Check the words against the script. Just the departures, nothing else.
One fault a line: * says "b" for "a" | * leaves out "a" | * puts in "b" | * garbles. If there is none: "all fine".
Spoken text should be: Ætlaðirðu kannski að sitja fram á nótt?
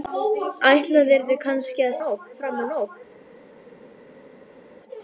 * says "nótt" for "sitja"